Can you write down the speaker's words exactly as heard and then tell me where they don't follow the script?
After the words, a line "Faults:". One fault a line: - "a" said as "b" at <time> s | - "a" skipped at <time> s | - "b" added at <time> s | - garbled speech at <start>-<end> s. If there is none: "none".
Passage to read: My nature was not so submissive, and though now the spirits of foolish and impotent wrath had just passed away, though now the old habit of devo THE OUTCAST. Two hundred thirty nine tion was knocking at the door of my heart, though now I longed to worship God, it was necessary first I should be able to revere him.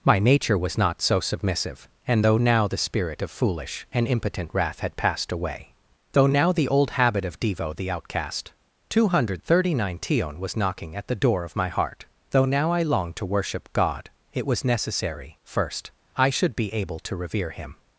My nature was not so submissive, and though now the spirit of foolish and impotent wrath had passed away, though now the old habit of devo THE OUTCAST. Two hundred thirty nine tion was knocking at the door of my heart, though now I longed to worship God, it was necessary first I should be able to revere him.
Faults:
- "spirits" said as "spirit" at 2.8 s
- "just" skipped at 5.0 s